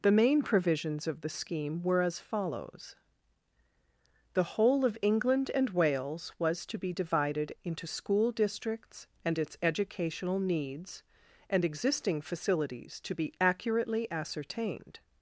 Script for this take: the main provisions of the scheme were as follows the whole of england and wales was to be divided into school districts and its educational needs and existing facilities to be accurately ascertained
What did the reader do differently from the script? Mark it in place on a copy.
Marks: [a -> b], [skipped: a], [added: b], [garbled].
the main provisions of the scheme were as follows the whole of england and wales was to be divided into school districts and its educational needs and existing facilities to be accurately ascertained